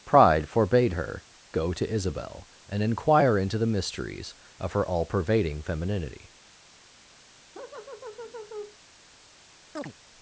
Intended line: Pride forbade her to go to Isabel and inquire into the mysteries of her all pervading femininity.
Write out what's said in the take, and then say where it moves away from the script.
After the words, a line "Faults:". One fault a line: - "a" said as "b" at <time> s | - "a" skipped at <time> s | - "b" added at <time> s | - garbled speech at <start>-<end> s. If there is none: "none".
Pride forbade her go to Isabel and inquire into the mysteries of her all pervading femininity.
Faults:
- "to" skipped at 1.2 s